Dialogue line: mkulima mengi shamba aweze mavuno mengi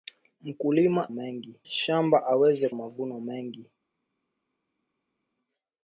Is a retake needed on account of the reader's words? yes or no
no